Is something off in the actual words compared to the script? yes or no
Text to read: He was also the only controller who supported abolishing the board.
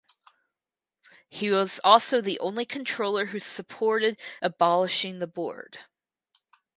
no